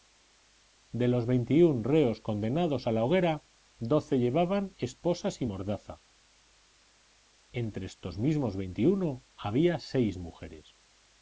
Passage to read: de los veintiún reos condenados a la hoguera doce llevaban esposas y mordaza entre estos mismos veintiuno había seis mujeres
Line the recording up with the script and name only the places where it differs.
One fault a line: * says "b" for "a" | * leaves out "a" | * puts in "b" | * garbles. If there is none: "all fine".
all fine